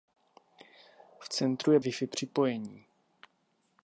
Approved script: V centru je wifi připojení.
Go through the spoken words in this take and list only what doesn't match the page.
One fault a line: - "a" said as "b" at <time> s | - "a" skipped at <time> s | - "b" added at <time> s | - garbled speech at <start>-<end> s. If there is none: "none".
none